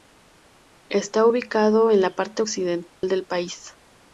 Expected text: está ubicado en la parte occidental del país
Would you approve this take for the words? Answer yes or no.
yes